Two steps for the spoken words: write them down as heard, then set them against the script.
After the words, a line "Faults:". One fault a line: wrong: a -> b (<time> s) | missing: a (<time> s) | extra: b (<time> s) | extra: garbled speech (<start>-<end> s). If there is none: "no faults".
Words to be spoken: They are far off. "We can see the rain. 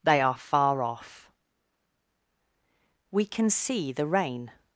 They are far off. "We can see the rain.
Faults:
no faults